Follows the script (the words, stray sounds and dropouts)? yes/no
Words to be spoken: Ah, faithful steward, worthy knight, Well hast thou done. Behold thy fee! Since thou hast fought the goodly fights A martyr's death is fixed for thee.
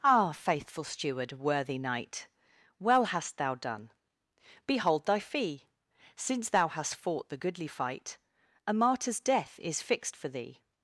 no